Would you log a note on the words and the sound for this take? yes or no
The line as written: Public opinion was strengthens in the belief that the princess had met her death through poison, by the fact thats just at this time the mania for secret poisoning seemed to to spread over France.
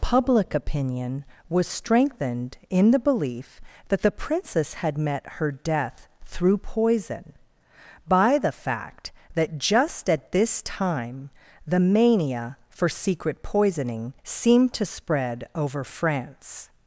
yes